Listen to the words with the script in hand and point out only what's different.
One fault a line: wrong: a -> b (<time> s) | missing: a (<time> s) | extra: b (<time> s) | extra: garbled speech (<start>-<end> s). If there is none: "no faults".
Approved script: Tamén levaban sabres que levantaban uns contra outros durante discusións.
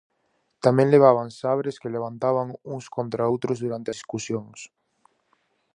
no faults